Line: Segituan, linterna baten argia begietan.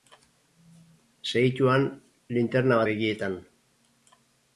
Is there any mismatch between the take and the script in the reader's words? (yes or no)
yes